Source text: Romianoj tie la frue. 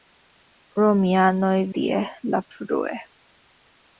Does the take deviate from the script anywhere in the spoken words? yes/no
no